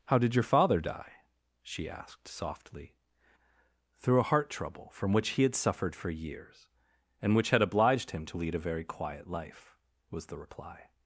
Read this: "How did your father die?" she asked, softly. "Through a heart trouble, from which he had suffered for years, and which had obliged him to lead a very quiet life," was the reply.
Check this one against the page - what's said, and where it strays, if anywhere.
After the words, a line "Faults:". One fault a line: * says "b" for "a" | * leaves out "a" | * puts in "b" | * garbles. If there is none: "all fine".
"How did your father die?" she asked, softly. "Through a heart trouble, from which he had suffered for years, and which had obliged him to lead a very quiet life," was the reply.
Faults:
all fine